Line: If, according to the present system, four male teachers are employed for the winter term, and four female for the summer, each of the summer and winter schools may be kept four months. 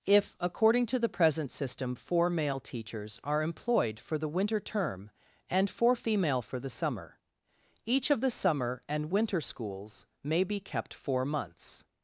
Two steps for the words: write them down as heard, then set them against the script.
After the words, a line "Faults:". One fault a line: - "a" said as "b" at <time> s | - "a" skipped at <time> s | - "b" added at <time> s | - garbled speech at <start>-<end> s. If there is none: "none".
If, according to the present system, four male teachers are employed for the winter term, and four female for the summer, each of the summer and winter schools may be kept four months.
Faults:
none